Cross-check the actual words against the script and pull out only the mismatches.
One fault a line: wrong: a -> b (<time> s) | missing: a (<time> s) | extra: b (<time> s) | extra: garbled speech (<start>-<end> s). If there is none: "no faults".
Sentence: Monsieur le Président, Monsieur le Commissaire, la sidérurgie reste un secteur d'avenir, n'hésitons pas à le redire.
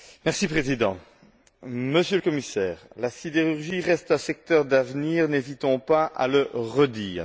no faults